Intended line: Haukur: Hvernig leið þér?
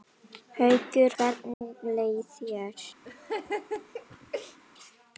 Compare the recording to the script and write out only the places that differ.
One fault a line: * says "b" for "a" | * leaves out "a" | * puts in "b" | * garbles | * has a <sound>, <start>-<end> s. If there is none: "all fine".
* has a dropout, 1.5-1.6 s
* has a laugh, 3.0-4.6 s